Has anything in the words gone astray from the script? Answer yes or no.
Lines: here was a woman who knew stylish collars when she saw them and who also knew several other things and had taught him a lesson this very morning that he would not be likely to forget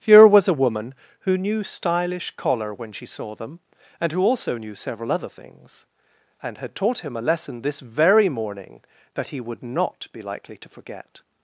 yes